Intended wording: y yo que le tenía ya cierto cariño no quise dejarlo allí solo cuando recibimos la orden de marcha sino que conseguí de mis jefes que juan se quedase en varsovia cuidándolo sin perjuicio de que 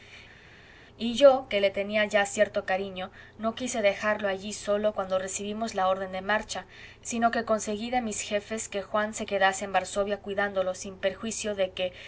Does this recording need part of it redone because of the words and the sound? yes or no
no